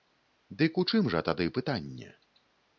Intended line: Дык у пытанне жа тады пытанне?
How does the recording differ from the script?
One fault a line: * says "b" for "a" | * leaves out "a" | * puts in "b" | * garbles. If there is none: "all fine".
* says "чым" for "пытанне"